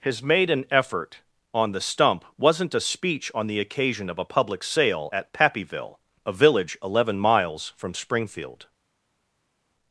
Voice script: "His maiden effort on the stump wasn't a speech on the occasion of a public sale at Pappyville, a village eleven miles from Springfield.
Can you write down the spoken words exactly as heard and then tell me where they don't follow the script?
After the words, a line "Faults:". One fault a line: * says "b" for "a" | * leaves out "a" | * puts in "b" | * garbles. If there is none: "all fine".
"His maiden effort on the stump wasn't a speech on the occasion of a public sale at Pappyville, a village eleven miles from Springfield.
Faults:
all fine